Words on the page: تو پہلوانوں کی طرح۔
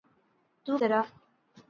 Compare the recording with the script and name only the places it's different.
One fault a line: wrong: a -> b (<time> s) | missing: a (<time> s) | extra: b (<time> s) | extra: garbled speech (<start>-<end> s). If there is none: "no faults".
missing: پہلوانوں کی (0.8 s)